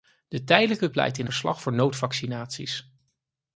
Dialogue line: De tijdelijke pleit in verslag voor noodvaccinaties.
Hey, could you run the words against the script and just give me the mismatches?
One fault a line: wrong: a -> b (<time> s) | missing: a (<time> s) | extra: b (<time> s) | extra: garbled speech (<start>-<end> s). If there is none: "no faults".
no faults